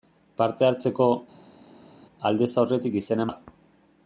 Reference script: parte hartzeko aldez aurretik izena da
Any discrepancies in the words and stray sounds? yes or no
no